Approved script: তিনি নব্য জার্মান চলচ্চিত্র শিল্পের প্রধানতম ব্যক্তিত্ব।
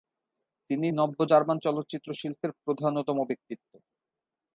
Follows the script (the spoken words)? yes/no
yes